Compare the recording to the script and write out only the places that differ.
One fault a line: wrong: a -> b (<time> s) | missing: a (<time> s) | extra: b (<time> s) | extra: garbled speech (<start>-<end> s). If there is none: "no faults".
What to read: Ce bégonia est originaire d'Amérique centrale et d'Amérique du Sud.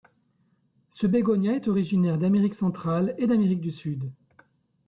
no faults